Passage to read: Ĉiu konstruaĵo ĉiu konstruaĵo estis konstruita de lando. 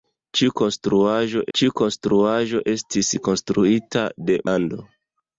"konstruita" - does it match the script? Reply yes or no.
yes